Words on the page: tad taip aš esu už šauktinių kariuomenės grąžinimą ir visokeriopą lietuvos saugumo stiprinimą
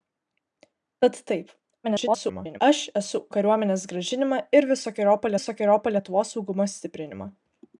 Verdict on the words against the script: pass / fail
fail